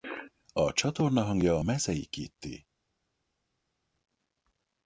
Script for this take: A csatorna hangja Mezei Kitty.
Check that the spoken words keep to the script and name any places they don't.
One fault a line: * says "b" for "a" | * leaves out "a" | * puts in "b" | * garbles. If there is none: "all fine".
all fine